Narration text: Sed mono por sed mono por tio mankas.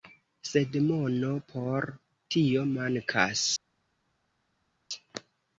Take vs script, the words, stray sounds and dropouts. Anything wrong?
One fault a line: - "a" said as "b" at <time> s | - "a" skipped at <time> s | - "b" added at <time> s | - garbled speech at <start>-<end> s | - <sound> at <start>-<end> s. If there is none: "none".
- "sed mono por" skipped at 1.9 s